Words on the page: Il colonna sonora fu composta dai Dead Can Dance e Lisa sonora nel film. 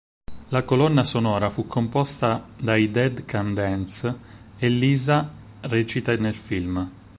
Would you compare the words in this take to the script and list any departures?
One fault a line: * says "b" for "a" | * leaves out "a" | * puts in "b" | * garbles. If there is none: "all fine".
* says "La" for "Il"
* says "recita" for "sonora"